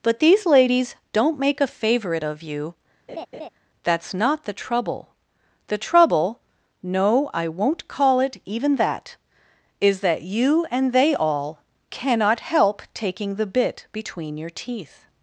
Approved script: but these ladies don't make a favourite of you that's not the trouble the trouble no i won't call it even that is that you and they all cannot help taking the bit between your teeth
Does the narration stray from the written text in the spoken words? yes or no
no